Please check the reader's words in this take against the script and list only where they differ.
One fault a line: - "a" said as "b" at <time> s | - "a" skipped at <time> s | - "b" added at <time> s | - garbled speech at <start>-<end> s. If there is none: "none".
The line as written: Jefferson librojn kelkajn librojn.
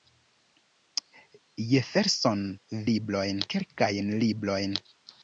none